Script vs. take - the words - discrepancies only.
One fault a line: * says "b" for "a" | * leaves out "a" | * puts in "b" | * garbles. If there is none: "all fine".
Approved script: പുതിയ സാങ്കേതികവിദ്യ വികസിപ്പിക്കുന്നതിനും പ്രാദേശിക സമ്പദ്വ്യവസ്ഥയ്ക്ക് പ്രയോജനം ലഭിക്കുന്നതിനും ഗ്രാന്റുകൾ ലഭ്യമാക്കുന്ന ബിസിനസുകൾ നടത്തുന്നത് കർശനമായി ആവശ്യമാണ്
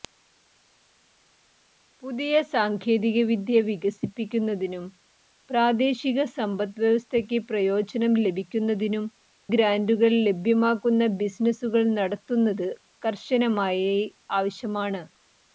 all fine